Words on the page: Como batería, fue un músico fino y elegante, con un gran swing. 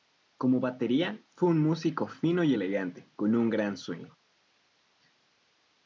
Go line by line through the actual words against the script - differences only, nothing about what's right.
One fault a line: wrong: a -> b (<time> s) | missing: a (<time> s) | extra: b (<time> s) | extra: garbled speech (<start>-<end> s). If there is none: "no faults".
no faults